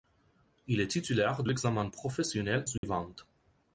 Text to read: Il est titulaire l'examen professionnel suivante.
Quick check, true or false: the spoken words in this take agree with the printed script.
true